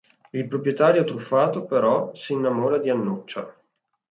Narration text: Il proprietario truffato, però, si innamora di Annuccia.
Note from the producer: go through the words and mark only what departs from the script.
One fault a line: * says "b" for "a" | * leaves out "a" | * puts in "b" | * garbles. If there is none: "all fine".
all fine